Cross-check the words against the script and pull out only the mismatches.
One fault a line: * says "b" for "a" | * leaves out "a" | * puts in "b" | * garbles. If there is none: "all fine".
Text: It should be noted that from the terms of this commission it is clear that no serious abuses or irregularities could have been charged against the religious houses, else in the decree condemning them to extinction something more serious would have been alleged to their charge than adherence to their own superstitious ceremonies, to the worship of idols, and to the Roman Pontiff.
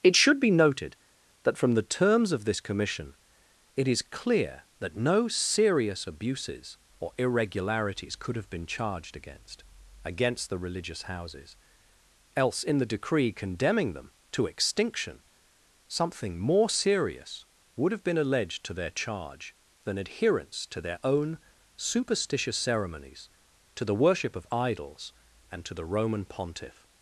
* puts in "against"